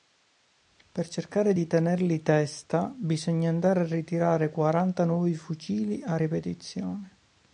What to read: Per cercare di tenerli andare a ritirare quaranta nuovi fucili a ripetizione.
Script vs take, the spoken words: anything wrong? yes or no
yes